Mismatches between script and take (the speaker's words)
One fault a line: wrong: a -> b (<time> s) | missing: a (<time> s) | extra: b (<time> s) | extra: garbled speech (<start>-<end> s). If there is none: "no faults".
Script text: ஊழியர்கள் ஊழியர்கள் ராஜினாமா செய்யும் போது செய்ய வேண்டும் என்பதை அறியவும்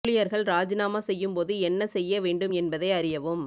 missing: ஊழியர்கள் (0.4 s)
extra: என்ன (1.6 s)